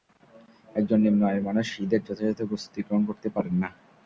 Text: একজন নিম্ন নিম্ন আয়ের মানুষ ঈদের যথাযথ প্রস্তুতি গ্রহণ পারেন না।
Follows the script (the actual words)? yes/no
no